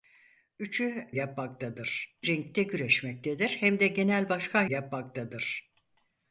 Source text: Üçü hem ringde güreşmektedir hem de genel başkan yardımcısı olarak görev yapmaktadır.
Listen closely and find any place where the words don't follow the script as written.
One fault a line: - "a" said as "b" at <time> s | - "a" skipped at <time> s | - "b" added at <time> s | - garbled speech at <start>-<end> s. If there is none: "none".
- "hem" said as "yapmaktadır" at 1.1 s
- "yardımcısı olarak görev" skipped at 4.7 s